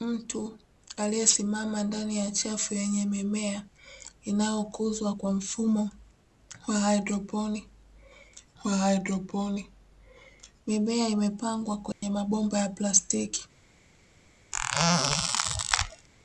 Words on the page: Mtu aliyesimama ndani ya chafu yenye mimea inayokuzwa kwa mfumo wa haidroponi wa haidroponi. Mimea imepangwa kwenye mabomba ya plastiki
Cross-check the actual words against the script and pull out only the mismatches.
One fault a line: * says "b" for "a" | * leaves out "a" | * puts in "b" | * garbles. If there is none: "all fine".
all fine